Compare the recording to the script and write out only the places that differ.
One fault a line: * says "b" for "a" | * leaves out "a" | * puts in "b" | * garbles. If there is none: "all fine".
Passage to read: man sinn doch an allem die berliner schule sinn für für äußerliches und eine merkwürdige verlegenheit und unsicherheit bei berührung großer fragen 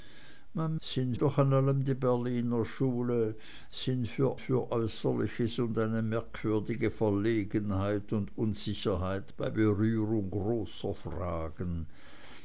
all fine